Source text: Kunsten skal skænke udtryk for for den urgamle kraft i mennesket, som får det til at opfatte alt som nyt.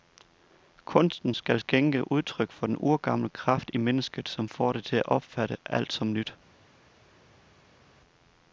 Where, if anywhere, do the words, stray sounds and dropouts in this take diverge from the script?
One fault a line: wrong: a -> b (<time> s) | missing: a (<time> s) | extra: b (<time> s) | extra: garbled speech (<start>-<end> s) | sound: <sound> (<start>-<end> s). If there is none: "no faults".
missing: for (2.7 s)